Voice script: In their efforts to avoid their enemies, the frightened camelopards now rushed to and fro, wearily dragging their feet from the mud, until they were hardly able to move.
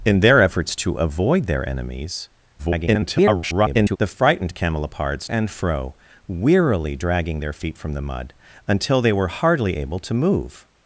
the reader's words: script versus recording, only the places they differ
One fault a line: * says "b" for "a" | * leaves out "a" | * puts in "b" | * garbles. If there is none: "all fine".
* garbles
* leaves out "now rushed to"